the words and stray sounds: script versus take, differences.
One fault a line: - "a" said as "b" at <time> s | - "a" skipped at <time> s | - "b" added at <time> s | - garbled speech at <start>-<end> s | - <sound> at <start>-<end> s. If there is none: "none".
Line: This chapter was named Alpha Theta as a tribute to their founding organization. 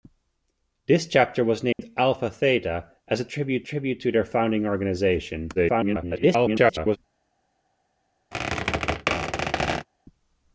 - dropout at 1.7-1.8 s
- "tribute" added at 3.6 s
- garbled speech at 5.5-7.0 s
- squeak at 8.3-9.9 s